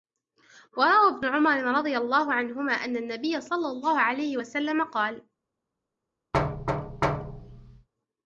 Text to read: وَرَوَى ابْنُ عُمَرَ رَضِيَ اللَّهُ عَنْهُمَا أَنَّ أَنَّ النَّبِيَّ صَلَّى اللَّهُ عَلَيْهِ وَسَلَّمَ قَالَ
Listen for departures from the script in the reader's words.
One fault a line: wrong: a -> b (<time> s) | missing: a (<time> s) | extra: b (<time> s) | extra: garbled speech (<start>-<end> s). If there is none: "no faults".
missing: أَنَّ (3.0 s)